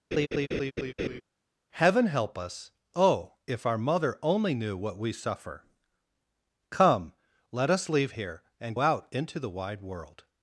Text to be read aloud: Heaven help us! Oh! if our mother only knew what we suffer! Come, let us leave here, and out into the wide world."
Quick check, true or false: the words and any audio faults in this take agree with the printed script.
false